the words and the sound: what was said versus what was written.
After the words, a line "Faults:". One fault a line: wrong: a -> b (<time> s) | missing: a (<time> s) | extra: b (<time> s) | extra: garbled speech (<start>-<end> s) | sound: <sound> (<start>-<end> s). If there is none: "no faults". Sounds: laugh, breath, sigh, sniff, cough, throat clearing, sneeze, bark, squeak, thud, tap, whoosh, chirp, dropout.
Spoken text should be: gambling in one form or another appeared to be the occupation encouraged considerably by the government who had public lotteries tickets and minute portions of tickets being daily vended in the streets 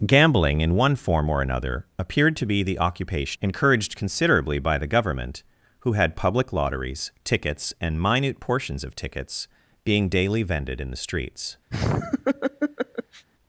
gambling in one form or another appeared to be the occupation encouraged considerably by the government who had public lotteries tickets and minute portions of tickets being daily vended in the streets
Faults:
sound: laugh (11.7-13.3 s)